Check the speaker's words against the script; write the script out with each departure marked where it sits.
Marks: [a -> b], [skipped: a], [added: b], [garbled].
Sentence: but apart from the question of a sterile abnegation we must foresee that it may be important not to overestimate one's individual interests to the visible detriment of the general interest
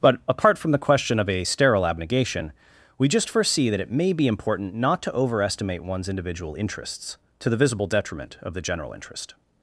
but apart from the question of a sterile abnegation we [must -> just] foresee that it may be important not to overestimate one's individual interests to the visible detriment of the general interest